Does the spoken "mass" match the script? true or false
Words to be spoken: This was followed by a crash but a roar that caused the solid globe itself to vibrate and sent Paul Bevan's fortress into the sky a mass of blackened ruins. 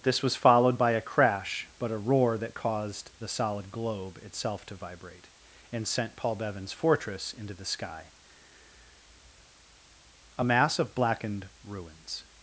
true